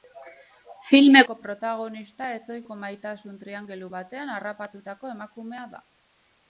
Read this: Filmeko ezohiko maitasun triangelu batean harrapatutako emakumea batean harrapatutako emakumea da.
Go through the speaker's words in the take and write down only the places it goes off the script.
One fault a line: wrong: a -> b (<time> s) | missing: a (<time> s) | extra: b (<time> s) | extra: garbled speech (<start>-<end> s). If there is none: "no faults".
extra: protagonista (1.4 s)
missing: batean harrapatutako emakumea (5.7 s)